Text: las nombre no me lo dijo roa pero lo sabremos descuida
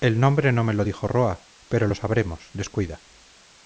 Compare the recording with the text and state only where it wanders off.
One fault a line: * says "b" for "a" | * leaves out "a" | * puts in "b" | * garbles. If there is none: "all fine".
* says "el" for "las"